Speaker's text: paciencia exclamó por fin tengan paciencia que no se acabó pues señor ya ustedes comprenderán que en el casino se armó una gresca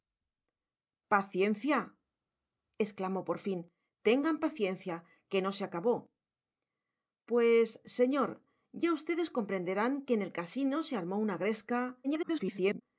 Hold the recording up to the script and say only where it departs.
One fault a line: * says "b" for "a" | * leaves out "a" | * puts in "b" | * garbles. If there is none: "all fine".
* garbles